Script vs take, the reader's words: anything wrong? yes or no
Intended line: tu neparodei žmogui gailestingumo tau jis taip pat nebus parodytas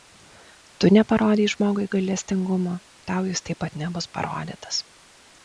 no